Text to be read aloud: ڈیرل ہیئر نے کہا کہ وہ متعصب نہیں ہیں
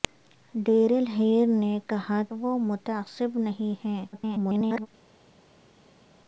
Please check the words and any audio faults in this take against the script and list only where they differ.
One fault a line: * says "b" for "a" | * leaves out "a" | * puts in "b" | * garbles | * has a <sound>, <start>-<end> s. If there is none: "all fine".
* leaves out "کہ"
* garbles